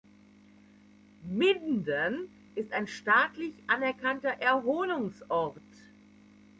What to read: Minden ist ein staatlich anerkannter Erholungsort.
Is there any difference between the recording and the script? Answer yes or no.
no